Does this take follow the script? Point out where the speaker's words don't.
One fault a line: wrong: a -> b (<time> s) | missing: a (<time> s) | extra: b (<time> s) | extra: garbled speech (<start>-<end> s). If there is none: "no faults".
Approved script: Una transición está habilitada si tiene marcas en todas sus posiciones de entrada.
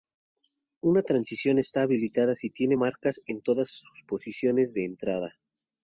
no faults